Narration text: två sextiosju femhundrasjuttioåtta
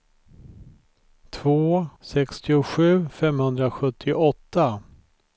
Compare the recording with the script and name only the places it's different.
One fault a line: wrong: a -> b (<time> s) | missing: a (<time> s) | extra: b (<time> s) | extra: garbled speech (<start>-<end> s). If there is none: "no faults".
no faults